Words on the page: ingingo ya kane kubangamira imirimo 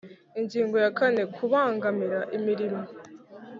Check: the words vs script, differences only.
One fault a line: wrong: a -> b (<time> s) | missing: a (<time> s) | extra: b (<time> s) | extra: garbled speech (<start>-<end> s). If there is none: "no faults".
no faults